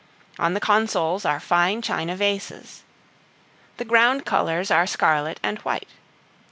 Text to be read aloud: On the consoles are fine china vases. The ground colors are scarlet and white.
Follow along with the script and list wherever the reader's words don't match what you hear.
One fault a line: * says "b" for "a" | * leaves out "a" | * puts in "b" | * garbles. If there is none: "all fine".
all fine